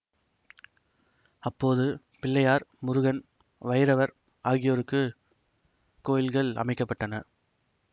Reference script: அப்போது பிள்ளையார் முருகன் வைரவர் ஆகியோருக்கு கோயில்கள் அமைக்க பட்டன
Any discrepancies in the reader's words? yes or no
no